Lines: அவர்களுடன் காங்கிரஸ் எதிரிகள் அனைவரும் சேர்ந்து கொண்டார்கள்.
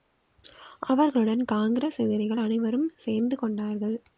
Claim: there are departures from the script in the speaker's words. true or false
false